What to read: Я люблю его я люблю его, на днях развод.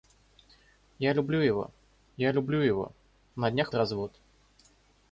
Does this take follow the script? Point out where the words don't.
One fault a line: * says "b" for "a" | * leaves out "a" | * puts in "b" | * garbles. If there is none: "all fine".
all fine